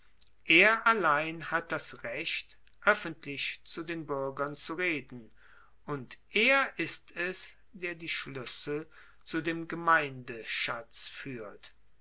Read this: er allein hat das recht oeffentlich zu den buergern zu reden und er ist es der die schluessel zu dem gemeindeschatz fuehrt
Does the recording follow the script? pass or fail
pass